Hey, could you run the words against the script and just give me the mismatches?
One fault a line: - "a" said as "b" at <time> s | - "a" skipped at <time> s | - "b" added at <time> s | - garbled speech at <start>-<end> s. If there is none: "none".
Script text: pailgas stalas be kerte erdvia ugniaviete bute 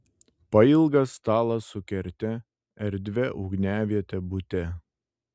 - "be" said as "su" at 1.7 s